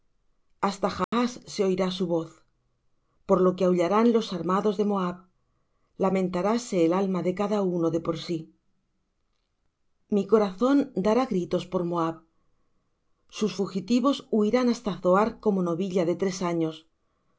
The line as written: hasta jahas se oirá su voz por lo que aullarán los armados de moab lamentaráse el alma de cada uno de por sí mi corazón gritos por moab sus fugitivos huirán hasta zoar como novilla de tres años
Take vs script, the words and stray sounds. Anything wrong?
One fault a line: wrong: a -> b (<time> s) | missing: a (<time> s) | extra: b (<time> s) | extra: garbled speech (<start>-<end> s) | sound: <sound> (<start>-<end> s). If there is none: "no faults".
sound: dropout (1.0-1.1 s)
extra: dará (11.1 s)